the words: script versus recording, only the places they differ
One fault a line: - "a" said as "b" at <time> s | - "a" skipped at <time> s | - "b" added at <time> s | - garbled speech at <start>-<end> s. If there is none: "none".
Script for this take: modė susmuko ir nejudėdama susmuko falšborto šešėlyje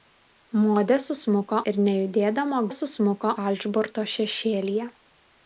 none